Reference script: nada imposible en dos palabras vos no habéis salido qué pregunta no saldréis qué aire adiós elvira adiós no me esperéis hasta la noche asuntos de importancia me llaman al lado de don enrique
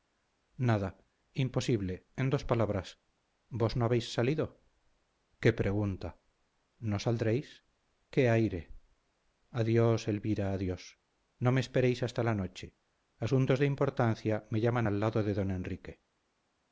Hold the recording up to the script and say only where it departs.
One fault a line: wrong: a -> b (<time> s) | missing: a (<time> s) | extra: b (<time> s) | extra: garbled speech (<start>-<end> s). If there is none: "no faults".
no faults